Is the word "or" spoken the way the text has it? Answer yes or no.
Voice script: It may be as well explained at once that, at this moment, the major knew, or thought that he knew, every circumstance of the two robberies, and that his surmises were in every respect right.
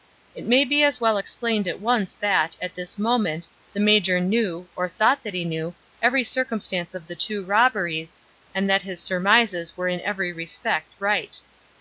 yes